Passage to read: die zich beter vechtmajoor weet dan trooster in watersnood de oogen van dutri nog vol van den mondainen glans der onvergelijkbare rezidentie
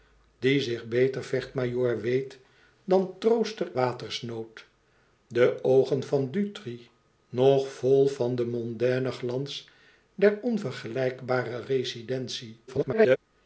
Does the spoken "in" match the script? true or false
false